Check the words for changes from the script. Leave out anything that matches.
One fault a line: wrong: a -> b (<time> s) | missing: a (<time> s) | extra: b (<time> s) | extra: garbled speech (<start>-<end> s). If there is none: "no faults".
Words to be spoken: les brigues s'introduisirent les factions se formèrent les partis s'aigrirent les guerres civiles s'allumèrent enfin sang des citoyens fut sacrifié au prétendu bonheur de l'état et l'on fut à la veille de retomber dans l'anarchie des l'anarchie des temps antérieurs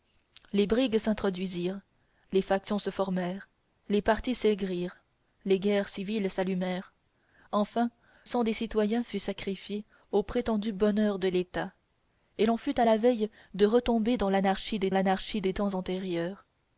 no faults